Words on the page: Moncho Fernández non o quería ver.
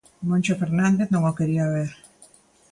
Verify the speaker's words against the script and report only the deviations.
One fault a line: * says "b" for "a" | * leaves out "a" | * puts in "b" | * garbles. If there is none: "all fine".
all fine